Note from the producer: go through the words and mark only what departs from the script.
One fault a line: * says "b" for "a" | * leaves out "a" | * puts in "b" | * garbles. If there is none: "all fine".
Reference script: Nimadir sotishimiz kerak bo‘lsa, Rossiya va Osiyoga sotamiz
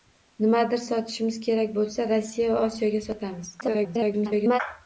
* garbles